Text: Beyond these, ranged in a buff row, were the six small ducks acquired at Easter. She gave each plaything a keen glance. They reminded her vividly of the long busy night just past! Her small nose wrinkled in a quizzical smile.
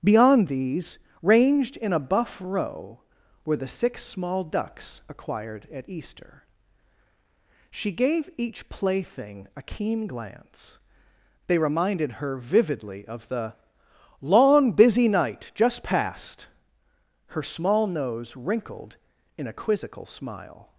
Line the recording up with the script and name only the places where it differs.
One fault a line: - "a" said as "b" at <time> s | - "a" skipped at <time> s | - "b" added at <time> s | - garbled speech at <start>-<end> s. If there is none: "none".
none